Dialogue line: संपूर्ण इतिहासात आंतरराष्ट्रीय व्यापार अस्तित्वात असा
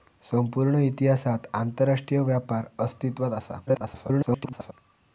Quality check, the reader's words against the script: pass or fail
fail